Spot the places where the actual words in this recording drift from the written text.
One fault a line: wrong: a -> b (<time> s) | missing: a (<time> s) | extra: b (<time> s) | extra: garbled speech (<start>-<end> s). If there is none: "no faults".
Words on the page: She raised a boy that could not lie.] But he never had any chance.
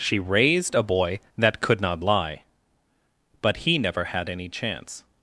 no faults